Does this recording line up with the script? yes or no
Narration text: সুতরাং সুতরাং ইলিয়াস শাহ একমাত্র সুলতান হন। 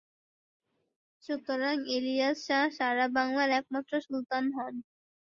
no